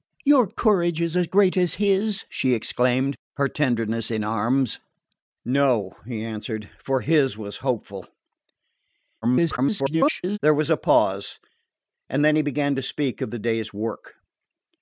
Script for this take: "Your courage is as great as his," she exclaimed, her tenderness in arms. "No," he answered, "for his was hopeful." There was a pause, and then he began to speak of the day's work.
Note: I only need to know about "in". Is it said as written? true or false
true